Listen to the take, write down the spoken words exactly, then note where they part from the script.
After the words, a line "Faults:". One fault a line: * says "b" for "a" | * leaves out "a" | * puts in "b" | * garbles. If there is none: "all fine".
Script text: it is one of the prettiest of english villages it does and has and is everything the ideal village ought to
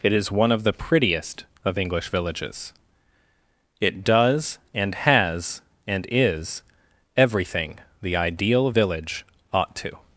it is one of the prettiest of english villages it does and has and is everything the ideal village ought to
Faults:
all fine